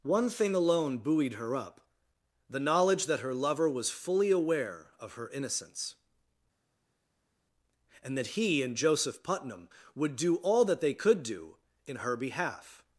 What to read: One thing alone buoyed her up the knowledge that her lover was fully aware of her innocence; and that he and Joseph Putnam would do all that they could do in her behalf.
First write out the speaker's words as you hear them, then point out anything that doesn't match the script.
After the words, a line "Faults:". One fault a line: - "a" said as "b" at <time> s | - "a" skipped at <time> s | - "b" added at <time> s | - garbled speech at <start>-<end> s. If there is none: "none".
One thing alone buoyed her up the knowledge that her lover was fully aware of her innocence; and that he and Joseph Putnam would do all that they could do in her behalf.
Faults:
none